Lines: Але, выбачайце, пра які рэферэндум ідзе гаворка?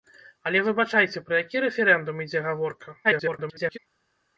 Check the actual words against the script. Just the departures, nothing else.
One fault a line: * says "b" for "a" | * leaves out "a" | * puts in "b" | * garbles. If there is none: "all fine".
* garbles